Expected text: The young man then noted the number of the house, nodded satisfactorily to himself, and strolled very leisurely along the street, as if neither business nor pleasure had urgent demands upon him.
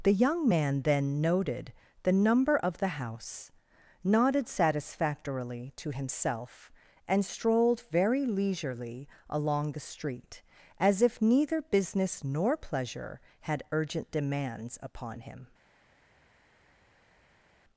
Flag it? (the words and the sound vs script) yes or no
no